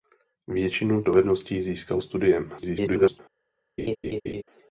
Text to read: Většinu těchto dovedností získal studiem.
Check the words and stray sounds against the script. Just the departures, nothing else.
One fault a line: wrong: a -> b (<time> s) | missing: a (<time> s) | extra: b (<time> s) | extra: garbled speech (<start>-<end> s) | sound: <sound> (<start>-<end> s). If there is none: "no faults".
missing: těchto (1.0 s)
extra: garbled speech (2.6-3.2 s)
sound: laugh (3.8-4.4 s)